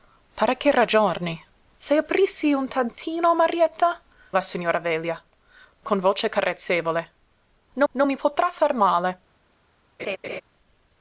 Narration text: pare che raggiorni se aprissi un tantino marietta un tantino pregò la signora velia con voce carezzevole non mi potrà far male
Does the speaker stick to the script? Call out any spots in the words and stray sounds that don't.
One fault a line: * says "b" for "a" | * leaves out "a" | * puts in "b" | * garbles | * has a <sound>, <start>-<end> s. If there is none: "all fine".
* leaves out "un tantino pregò"
* puts in "non"
* has a laugh, 10.0-10.4 s